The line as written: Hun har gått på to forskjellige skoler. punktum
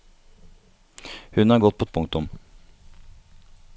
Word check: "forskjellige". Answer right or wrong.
wrong